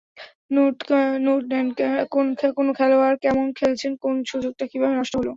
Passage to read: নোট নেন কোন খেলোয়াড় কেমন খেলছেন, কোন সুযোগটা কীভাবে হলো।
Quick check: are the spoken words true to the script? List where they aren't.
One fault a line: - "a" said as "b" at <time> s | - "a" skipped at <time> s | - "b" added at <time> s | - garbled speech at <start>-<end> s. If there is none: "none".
- "নষ্ট" added at 5.0 s